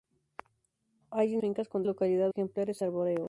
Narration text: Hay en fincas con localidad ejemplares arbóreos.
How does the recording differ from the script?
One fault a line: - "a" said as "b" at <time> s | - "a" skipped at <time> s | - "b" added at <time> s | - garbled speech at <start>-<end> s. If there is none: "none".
none